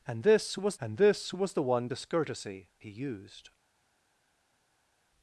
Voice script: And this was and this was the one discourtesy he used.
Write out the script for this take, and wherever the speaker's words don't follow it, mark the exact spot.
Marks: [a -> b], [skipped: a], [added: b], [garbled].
And this was and this was the one discourtesy he used.